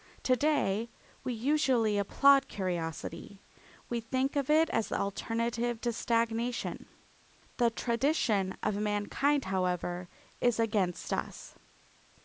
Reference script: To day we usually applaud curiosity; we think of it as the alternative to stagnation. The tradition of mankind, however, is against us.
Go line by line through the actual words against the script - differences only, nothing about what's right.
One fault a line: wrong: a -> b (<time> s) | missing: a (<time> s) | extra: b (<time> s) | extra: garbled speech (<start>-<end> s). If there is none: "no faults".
no faults